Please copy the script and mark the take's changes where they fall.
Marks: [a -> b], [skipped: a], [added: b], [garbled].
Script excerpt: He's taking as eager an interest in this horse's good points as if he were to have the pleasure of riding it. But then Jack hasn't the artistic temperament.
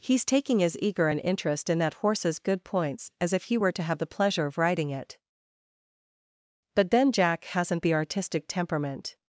He's taking as eager an interest in [this -> that] horse's good points as if he were to have the pleasure of riding it. But then Jack hasn't the artistic temperament.